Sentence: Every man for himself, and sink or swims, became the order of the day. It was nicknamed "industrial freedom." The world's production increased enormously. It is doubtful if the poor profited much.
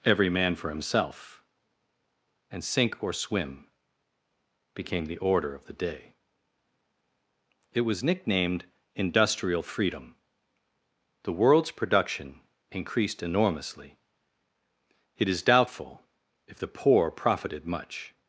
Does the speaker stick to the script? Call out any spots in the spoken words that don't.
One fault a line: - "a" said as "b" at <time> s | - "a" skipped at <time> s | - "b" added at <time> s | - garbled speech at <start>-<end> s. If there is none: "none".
- "swims" said as "swim" at 3.1 s